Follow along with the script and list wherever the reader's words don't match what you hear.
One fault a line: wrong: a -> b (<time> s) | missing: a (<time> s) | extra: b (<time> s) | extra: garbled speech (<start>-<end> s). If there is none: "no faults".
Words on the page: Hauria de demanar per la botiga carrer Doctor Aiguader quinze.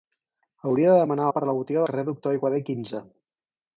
no faults